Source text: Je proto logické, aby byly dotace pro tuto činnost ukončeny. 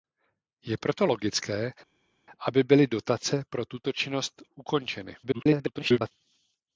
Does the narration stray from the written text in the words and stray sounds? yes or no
yes